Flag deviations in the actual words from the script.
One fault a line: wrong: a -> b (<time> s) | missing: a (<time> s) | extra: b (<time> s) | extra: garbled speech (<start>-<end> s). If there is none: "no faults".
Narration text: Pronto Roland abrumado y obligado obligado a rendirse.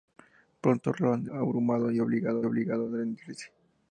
no faults